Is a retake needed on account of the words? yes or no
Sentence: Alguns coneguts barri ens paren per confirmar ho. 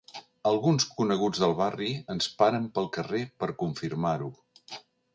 yes